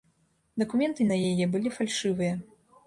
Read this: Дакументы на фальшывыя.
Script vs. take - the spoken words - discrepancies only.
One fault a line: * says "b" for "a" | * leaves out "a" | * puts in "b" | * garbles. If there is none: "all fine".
* puts in "яе былі"